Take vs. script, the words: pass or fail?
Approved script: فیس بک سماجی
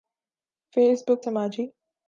pass